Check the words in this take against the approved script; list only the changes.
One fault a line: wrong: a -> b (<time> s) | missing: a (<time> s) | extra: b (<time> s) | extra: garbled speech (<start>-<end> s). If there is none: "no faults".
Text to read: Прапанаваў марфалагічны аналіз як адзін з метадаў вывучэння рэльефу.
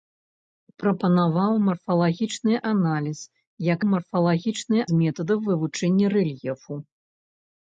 wrong: адзін -> марфалагічны (3.9 s)